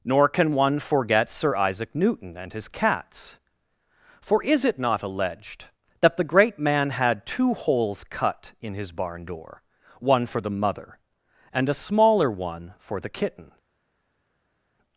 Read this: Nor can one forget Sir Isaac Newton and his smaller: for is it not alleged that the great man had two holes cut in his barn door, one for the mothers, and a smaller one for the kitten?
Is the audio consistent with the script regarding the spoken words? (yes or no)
no